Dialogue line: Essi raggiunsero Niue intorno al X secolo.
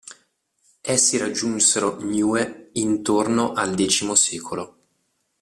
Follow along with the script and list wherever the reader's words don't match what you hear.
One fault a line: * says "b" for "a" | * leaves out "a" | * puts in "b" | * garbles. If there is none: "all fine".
all fine